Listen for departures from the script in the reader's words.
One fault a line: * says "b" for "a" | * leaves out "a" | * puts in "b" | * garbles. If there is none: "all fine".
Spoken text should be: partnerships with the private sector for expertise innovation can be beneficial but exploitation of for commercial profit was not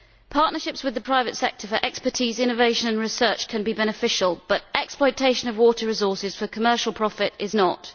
* puts in "and research"
* puts in "water resources"
* says "is" for "was"